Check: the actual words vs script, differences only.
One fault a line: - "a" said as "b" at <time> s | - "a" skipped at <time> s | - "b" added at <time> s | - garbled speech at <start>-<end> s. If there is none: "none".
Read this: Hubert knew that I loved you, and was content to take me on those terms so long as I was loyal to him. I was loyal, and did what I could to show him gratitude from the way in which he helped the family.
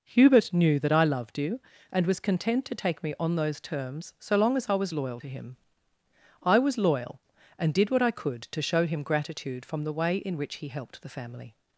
none